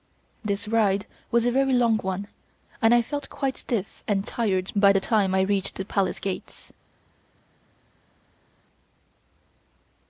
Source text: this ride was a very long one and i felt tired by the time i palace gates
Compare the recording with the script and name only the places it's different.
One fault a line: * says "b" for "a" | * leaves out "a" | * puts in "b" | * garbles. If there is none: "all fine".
* puts in "quite stiff and"
* puts in "reached the"